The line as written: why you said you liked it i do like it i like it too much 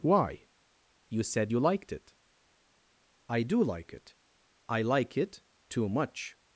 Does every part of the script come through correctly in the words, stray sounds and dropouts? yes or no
yes